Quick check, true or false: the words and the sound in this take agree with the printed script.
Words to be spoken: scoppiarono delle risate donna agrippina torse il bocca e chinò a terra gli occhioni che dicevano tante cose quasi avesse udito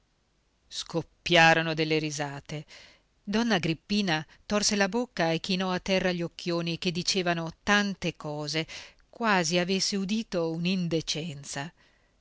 false